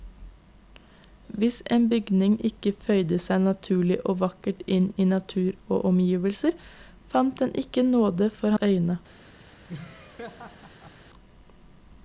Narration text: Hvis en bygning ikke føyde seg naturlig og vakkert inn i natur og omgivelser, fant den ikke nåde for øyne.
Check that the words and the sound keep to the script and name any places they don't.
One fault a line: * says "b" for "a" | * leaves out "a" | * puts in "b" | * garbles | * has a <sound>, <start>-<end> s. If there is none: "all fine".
* has a laugh, 9.7-11.0 s